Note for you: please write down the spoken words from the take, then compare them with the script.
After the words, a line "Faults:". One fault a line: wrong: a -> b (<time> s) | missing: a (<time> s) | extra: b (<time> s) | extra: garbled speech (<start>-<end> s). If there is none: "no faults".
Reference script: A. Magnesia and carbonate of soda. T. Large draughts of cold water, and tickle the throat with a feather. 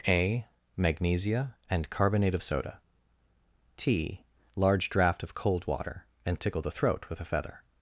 A. Magnesia and carbonate of soda. T. Large draught of cold water, and tickle the throat with a feather.
Faults:
wrong: draughts -> draught (4.9 s)